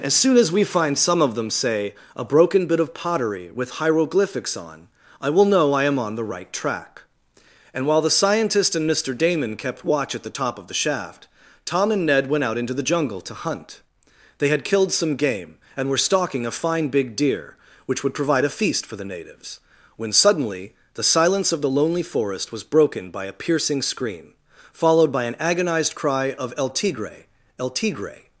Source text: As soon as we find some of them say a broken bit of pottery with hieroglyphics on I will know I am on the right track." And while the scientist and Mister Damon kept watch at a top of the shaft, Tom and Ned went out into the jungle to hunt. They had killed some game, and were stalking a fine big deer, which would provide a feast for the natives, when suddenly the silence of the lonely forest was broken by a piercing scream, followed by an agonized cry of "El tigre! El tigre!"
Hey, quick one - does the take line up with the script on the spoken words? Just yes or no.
no